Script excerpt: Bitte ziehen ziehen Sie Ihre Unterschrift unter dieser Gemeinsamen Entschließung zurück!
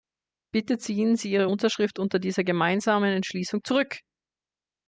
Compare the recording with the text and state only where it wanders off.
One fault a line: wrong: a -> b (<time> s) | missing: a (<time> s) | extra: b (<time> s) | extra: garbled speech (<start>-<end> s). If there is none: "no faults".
missing: ziehen (1.1 s)